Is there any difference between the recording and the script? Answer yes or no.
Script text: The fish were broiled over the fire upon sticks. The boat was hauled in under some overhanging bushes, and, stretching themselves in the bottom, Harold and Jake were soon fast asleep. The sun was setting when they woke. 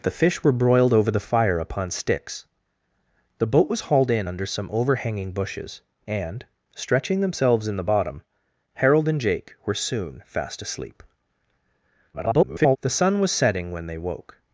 yes